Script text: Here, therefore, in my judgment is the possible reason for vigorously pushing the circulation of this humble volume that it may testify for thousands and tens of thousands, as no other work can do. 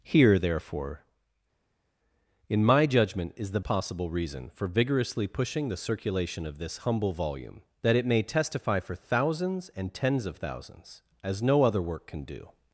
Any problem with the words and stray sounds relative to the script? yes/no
no